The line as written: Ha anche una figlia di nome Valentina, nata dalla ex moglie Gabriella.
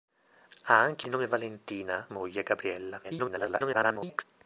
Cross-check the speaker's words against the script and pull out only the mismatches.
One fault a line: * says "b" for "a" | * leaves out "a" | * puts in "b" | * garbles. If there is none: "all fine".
* leaves out "una figlia"
* leaves out "nata dalla ex"
* garbles